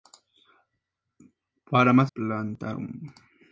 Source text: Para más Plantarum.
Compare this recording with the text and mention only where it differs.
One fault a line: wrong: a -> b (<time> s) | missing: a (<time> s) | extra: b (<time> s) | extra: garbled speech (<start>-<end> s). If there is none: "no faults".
no faults